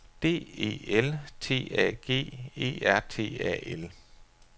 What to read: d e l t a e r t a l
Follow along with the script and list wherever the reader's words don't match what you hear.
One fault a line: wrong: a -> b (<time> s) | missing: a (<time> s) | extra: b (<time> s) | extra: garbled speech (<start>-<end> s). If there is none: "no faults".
extra: g (2.0 s)